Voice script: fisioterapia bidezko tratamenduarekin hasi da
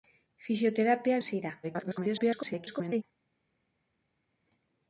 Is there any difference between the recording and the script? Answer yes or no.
yes